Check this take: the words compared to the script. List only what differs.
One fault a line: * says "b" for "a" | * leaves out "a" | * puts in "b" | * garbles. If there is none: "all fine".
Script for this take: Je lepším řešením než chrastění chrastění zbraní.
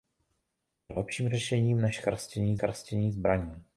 all fine